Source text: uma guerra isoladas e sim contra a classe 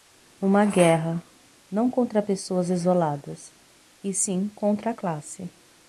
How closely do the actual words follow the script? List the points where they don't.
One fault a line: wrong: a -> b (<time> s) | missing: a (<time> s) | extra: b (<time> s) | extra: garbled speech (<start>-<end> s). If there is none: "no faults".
extra: não contra pessoas (1.7 s)